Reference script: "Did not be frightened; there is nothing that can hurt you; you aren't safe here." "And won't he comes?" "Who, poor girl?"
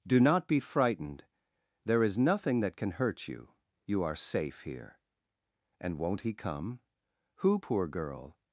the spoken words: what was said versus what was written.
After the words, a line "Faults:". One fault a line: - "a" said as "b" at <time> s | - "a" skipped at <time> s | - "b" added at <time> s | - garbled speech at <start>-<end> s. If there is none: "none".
"Do not be frightened; there is nothing that can hurt you; you are safe here." "And won't he come?" "Who, poor girl?"
Faults:
- "Did" said as "Do" at 0.1 s
- "aren't" said as "are" at 4.0 s
- "comes" said as "come" at 6.3 s